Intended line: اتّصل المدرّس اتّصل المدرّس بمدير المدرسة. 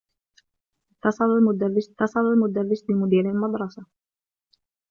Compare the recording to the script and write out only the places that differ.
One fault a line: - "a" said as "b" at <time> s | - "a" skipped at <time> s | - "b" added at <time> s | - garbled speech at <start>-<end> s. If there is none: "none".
none